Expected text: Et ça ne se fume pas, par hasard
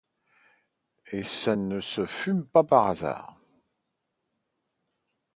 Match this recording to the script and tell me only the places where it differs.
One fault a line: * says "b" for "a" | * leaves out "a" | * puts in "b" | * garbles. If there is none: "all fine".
all fine